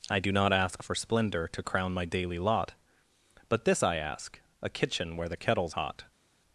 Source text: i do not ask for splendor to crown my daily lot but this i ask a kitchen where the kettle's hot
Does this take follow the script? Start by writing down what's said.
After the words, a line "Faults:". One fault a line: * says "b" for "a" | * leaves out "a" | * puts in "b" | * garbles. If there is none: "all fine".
i do not ask for splendor to crown my daily lot but this i ask a kitchen where the kettle's hot
Faults:
all fine